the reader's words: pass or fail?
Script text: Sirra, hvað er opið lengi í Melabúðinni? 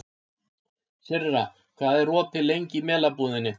pass